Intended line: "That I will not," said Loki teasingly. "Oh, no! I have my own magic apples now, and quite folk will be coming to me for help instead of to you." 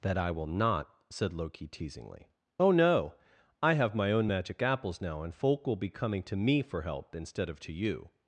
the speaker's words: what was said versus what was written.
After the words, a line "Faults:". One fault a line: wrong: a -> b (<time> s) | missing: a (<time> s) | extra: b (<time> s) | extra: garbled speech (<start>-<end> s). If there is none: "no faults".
"That I will not," said Loki teasingly. "Oh, no! I have my own magic apples now, and folk will be coming to me for help instead of to you."
Faults:
missing: quite (5.3 s)